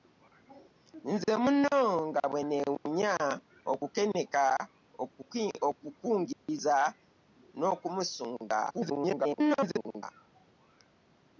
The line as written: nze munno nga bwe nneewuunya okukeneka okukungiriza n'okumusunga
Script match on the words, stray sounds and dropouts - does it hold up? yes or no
no